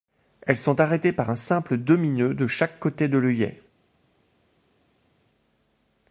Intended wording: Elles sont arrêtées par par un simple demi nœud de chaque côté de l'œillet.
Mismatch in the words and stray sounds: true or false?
true